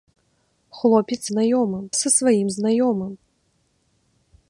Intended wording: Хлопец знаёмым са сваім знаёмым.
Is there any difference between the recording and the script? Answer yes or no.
no